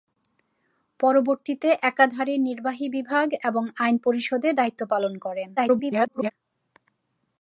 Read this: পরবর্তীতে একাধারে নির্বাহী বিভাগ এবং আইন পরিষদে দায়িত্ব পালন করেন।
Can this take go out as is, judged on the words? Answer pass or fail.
fail